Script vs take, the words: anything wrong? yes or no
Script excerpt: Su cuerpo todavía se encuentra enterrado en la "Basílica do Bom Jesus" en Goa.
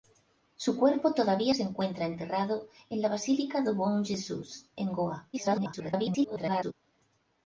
yes